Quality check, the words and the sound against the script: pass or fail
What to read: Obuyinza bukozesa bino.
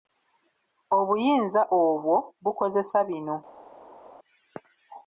fail